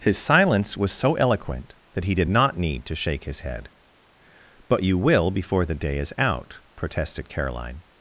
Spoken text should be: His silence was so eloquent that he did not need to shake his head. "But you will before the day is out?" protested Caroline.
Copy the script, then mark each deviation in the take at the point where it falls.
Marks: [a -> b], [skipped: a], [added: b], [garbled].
His silence was so eloquent that he did not need to shake his head. "But you will before the day is out?" protested Caroline.